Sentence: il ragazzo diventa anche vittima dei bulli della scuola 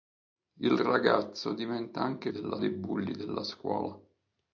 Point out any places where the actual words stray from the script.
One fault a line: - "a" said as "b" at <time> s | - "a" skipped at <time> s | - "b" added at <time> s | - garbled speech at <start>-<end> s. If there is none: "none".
- "vittima" said as "della" at 2.3 s